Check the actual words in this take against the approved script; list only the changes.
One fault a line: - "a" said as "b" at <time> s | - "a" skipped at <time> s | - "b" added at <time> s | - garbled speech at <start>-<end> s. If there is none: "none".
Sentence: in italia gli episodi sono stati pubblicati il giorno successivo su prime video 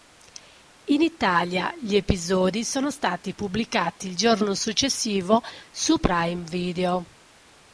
none